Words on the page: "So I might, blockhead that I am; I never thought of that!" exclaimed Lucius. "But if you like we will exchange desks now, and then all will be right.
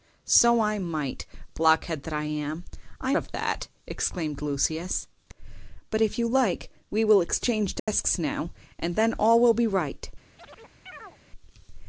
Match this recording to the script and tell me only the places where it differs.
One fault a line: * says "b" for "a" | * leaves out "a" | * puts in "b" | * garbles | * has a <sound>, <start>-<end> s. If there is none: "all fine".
* leaves out "never thought"
* has a dropout, 7.8-7.9 s
* has a chirp, 10.4-11.2 s